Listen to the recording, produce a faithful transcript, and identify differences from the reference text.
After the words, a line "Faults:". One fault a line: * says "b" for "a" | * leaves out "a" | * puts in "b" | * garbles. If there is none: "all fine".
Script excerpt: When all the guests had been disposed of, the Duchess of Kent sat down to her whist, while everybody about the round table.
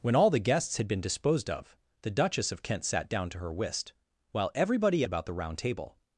When all the guests had been disposed of, the Duchess of Kent sat down to her whist, while everybody about the round table.
Faults:
all fine